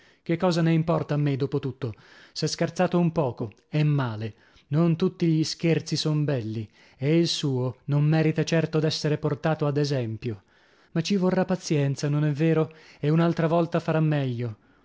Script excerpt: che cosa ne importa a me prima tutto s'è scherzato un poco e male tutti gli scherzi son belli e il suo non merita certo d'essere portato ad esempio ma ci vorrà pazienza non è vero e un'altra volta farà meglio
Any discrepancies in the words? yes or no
yes